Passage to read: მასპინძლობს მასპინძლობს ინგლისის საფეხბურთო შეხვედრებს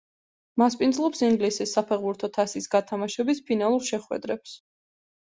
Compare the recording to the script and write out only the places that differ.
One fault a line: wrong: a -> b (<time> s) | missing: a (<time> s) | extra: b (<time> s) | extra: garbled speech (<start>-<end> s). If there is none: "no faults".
missing: მასპინძლობს (1.2 s)
extra: თასის გათამაშების ფინალურ (2.4 s)